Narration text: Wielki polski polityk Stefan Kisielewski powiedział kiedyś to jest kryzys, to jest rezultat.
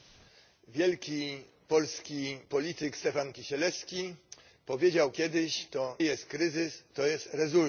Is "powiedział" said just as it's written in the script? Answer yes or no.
yes